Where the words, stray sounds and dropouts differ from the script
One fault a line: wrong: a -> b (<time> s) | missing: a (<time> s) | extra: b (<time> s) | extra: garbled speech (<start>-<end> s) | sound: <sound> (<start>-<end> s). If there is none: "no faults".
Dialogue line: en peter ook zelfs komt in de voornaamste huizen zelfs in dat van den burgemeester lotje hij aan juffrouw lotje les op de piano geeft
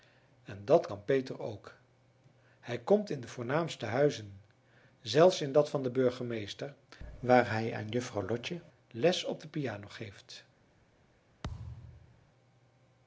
extra: dat kan (0.7 s)
wrong: zelfs -> hij (2.6 s)
wrong: lotje -> waar (7.2 s)
sound: thud (11.4-12.3 s)